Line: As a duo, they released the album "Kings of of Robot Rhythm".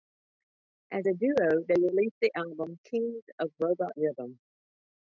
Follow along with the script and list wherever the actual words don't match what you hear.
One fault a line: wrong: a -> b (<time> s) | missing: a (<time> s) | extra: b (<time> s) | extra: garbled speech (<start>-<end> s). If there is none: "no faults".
missing: of (3.5 s)